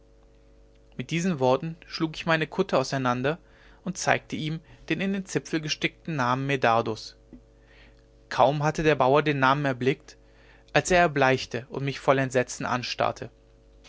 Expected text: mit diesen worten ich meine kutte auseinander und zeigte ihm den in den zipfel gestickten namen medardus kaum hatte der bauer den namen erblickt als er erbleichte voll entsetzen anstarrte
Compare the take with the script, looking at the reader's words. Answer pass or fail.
fail